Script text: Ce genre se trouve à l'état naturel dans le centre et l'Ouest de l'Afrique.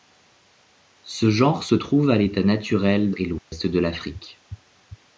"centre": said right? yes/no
no